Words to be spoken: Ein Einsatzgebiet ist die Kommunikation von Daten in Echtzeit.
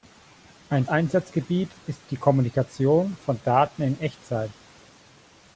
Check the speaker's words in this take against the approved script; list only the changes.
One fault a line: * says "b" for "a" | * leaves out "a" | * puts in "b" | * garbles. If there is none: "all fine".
all fine